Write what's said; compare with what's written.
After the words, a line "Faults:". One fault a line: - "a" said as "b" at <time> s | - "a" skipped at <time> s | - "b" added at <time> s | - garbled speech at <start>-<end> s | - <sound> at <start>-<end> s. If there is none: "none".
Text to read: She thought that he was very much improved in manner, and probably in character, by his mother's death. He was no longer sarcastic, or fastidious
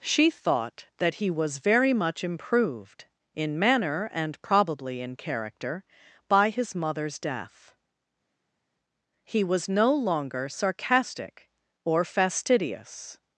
She thought that he was very much improved in manner, and probably in character, by his mother's death. He was no longer sarcastic, or fastidious
Faults:
none